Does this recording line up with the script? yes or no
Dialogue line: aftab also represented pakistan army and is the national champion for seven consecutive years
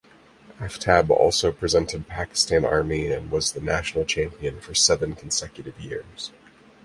no